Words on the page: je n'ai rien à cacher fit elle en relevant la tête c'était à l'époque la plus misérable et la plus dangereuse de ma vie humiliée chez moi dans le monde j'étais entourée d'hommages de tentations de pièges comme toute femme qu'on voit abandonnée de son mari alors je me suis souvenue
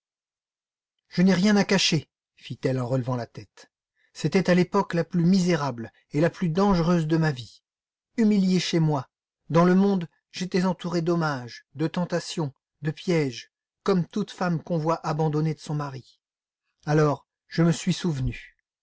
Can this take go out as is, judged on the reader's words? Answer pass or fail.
pass